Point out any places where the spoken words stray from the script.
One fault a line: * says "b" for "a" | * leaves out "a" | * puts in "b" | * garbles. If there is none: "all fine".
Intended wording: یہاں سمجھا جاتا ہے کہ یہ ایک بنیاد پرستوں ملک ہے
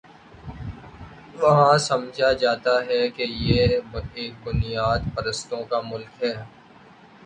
* says "وہاں" for "یہاں"
* puts in "کا"